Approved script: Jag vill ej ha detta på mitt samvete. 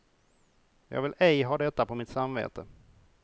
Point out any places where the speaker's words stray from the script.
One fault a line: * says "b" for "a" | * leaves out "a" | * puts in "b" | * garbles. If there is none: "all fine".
all fine